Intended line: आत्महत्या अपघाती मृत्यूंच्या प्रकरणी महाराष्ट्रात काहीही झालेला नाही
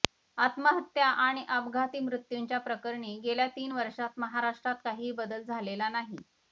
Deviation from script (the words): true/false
true